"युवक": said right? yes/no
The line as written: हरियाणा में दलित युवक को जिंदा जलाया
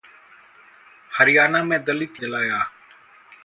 no